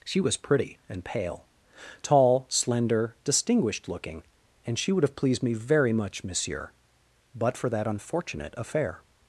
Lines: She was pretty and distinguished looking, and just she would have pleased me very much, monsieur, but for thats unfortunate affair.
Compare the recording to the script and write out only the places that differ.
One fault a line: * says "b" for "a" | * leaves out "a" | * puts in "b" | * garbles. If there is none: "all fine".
* puts in "pale tall slender"
* leaves out "just"
* says "that" for "thats"